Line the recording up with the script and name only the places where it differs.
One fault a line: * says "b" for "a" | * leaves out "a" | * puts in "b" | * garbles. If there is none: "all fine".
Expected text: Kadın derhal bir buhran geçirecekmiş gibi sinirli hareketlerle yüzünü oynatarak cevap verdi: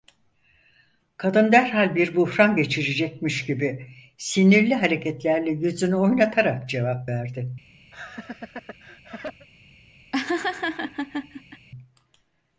all fine